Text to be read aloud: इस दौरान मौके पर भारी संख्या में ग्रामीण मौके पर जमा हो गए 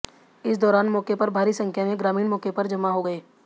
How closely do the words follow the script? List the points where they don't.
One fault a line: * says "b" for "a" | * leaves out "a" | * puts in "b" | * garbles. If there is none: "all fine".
all fine